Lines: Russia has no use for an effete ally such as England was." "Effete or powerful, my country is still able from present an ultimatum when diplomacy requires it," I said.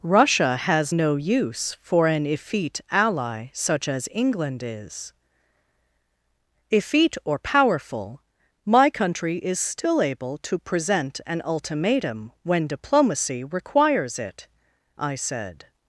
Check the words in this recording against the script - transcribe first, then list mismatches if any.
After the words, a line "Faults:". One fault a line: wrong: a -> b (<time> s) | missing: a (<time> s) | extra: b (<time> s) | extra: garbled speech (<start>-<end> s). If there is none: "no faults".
Russia has no use for an effete ally such as England is." "Effete or powerful, my country is still able to present an ultimatum when diplomacy requires it," I said.
Faults:
wrong: was -> is (4.6 s)
wrong: from -> to (10.4 s)